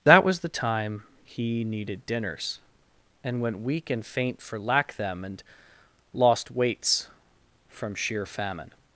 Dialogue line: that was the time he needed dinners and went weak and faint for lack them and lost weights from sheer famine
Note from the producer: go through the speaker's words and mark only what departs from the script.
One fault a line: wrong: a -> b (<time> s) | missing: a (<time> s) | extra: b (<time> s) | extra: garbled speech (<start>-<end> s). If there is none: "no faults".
no faults